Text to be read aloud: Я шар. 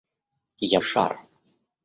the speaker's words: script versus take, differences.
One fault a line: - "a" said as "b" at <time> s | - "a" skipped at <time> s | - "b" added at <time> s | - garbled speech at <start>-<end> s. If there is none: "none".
none